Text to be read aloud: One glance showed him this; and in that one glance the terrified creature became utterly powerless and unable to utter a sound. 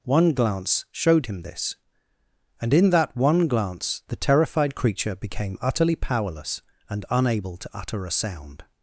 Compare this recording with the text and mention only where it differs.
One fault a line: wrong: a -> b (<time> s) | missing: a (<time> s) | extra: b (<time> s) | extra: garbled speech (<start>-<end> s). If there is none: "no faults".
no faults